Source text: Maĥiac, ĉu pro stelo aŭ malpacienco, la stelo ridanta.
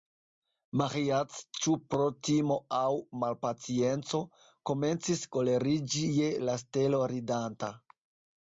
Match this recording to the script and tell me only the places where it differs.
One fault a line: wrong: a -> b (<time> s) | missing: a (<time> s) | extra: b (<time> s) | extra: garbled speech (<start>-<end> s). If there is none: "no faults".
wrong: stelo -> timo (2.3 s)
extra: komencis koleriĝi je (4.7 s)